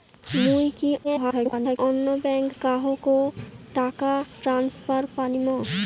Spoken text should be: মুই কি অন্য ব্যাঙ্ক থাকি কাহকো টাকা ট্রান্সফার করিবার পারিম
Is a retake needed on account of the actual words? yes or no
yes